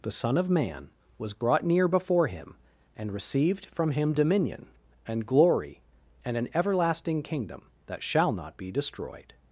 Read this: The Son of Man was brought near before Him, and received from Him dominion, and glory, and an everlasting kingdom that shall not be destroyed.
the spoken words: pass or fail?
pass